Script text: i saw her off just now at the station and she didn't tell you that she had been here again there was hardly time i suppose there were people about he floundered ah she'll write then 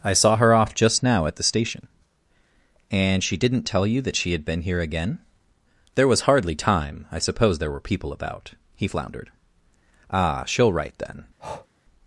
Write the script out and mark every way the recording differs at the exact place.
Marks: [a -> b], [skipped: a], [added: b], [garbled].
i saw her off just now at the station and she didn't tell you that she had been here again there was hardly time i suppose there were people about he floundered ah she'll write then